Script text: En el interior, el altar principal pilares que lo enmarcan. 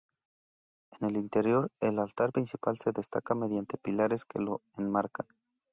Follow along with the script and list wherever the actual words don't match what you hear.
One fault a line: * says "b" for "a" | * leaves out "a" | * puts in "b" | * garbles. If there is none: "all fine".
* puts in "se destaca mediante"